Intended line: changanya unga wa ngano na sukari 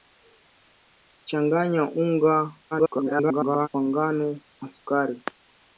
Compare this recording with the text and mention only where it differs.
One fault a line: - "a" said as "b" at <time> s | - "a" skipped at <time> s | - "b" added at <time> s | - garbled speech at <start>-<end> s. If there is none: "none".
- garbled speech at 2.7-3.7 s